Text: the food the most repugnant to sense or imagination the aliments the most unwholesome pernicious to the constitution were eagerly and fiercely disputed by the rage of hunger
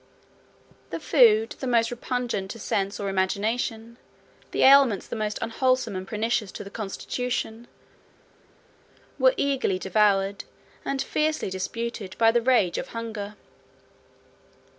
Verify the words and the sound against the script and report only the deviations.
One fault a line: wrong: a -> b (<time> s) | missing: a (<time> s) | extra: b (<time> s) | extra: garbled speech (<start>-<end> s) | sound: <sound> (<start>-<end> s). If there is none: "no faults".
extra: and (6.0 s)
extra: devoured (9.8 s)